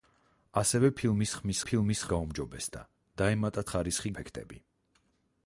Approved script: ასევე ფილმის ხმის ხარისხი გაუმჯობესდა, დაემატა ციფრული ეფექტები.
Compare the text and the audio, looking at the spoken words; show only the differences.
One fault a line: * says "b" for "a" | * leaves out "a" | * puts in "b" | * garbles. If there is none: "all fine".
* says "ფილმის" for "ხარისხი"
* says "ხარისხი" for "ციფრული"